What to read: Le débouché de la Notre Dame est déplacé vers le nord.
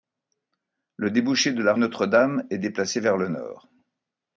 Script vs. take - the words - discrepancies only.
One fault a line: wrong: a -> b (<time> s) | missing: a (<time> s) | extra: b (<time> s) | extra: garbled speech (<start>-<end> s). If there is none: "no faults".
no faults